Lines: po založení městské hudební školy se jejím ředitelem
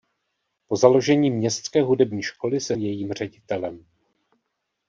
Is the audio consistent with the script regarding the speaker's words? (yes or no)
yes